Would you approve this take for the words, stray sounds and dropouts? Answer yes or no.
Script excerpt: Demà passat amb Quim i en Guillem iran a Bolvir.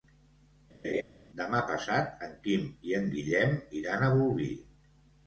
no